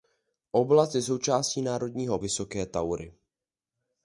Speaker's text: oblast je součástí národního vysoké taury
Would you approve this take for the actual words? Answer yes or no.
yes